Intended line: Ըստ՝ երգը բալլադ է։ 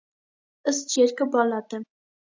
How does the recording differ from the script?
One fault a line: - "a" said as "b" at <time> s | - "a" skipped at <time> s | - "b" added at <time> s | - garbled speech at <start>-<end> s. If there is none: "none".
none